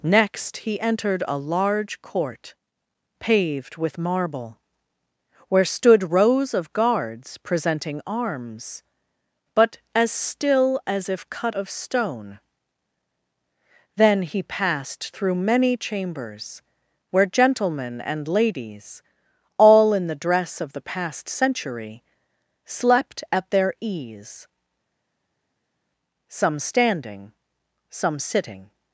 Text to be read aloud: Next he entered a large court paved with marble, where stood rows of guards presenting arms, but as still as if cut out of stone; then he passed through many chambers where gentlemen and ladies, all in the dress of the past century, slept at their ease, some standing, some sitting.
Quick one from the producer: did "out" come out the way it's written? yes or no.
no